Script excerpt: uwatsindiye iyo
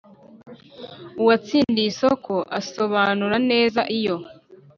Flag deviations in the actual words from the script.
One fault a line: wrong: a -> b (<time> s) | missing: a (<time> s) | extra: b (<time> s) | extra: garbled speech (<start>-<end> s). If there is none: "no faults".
extra: isoko asobanura neza (1.9 s)